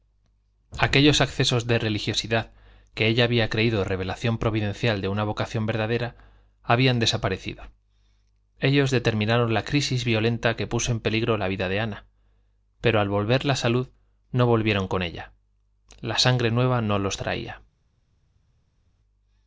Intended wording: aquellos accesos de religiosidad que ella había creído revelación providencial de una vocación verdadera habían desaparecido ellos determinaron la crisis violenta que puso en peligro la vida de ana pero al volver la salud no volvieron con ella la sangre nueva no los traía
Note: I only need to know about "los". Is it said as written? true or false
true